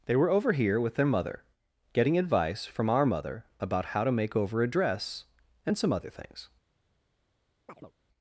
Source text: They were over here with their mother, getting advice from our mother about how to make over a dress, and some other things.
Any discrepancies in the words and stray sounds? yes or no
yes